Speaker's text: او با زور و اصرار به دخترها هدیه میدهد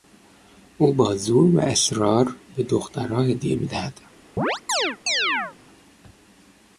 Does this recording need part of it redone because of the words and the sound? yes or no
yes